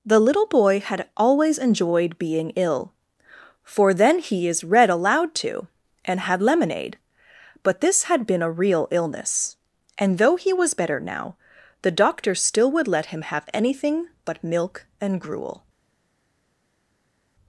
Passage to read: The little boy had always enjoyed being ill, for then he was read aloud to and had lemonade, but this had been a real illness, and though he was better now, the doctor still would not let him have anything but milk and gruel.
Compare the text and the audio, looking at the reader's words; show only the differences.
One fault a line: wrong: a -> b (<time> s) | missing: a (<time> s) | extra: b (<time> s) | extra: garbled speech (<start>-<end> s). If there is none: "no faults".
wrong: was -> is (4.5 s)
missing: not (12.9 s)